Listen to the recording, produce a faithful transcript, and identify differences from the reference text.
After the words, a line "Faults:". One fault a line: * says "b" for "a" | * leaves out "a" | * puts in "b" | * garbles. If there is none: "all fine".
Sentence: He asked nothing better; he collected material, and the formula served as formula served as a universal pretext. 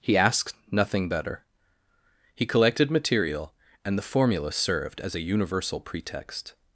He asked nothing better; he collected material, and the formula served as a universal pretext.
Faults:
* leaves out "formula served as"